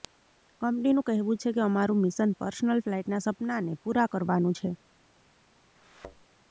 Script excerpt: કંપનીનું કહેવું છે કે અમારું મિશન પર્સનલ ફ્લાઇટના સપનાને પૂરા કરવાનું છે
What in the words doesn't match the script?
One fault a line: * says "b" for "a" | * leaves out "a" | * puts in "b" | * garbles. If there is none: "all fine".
all fine